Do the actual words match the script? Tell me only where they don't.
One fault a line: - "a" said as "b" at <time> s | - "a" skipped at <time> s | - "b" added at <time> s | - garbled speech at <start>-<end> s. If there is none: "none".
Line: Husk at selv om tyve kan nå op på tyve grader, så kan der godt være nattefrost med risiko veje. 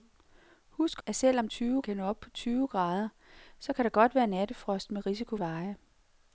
none